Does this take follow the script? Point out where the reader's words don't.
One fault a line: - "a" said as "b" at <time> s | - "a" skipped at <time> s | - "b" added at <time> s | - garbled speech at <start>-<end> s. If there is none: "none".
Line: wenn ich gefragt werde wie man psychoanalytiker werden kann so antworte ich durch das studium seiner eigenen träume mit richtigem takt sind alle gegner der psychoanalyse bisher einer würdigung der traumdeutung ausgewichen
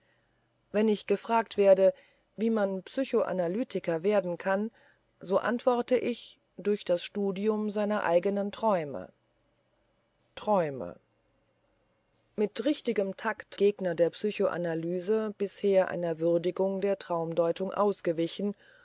- "träume" added at 10.3 s
- "sind alle" skipped at 13.5 s